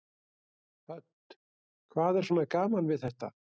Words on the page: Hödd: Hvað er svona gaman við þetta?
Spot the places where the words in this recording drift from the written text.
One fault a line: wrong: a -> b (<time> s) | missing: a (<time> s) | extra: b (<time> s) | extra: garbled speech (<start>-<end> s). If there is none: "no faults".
no faults